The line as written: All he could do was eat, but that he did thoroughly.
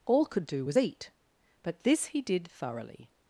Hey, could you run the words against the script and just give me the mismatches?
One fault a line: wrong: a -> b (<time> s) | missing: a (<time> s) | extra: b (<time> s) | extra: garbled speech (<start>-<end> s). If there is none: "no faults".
missing: he (0.3 s)
wrong: that -> this (1.8 s)